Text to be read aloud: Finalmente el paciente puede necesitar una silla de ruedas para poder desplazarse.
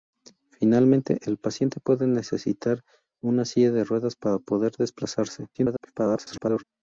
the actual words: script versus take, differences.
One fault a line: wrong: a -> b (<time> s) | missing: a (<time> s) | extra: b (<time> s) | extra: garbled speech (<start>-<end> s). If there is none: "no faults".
extra: garbled speech (5.5-6.6 s)